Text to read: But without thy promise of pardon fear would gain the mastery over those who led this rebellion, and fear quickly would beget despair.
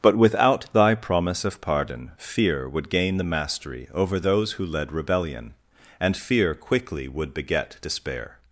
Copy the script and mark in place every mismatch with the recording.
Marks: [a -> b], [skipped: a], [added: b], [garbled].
But without thy promise of pardon fear would gain the mastery over those who led [skipped: this] rebellion, and fear quickly would beget despair.